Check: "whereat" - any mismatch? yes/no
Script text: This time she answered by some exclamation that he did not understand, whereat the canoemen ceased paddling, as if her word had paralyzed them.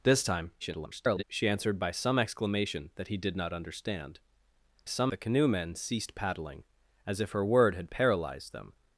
yes